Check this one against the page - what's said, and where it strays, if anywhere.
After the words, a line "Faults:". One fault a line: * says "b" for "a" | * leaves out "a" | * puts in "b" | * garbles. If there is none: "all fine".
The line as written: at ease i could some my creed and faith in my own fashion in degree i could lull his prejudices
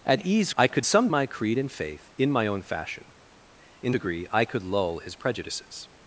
at ease i could some my creed and faith in my own fashion in degree i could lull his prejudices
Faults:
all fine